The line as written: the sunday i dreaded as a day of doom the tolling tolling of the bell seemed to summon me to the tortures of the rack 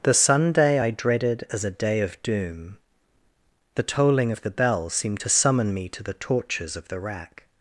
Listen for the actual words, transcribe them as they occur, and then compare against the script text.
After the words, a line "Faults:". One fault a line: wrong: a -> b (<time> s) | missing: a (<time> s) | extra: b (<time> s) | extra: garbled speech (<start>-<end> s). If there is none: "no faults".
the sunday i dreaded as a day of doom the tolling of the bell seemed to summon me to the tortures of the rack
Faults:
missing: tolling (4.3 s)